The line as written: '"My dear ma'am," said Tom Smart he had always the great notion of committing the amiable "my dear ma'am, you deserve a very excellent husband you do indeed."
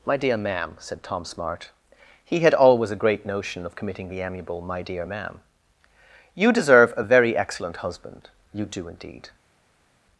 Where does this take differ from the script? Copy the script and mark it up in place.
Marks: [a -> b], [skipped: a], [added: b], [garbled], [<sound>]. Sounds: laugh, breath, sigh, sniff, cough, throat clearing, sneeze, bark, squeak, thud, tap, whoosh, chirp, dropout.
'"My dear ma'am," said Tom Smart he had always [the -> a] great notion of committing the amiable "my dear ma'am, you deserve a very excellent husband you do indeed."